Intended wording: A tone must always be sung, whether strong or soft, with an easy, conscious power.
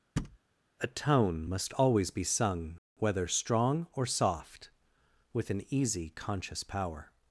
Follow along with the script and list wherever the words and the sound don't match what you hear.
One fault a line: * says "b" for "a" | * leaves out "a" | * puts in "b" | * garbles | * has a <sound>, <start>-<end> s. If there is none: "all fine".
* has a thud, 0.2-0.4 s